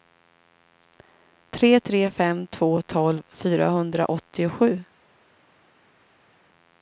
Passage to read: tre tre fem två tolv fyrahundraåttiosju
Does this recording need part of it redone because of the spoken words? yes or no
no